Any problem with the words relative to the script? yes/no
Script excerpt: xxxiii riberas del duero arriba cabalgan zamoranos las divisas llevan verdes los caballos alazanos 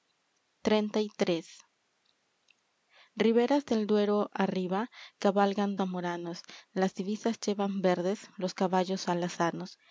no